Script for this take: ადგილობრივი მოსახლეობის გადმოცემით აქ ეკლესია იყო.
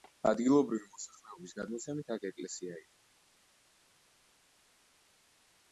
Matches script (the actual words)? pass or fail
pass